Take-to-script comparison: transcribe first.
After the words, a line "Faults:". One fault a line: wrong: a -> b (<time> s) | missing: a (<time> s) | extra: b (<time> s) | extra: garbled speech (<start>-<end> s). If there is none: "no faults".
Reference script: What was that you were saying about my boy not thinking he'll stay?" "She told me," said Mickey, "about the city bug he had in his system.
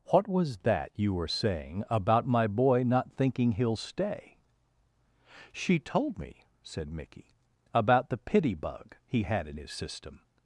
What was that you were saying about my boy not thinking he'll stay?" "She told me," said Mickey, "about the pity bug he had in his system.
Faults:
wrong: city -> pity (8.2 s)